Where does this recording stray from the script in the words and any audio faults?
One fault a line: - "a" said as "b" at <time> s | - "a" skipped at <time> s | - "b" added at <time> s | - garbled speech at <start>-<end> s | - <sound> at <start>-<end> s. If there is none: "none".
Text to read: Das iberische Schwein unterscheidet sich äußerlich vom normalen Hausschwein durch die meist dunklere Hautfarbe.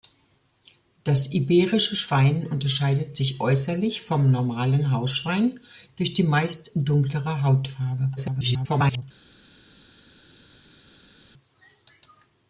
- garbled speech at 8.2-9.0 s